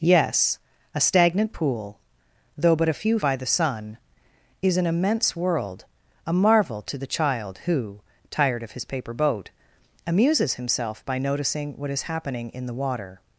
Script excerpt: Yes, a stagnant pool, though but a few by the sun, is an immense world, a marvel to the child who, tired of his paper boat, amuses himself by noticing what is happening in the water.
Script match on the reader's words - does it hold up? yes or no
yes